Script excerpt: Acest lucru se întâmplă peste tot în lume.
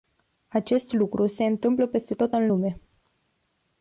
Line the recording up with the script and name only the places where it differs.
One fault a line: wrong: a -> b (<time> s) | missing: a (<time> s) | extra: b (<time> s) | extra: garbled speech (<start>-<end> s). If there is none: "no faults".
no faults